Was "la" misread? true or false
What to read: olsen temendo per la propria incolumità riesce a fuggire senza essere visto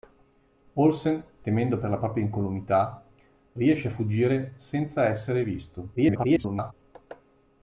false